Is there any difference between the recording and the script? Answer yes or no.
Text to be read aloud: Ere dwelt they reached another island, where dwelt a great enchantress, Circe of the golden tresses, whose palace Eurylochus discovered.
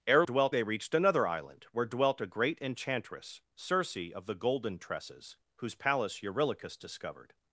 no